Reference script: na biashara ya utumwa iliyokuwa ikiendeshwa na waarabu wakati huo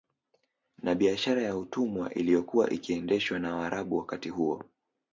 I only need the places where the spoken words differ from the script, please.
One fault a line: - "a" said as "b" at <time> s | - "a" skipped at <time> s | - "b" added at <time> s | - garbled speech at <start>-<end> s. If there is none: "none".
none